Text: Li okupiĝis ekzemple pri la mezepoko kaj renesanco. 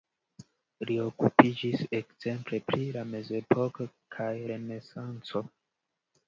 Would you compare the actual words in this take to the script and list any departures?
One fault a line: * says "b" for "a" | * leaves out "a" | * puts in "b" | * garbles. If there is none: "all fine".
all fine